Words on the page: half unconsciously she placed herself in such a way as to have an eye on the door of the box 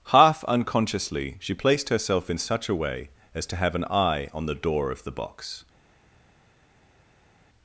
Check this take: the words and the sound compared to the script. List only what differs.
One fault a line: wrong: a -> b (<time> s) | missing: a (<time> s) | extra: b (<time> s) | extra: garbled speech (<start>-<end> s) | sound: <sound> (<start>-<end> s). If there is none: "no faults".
no faults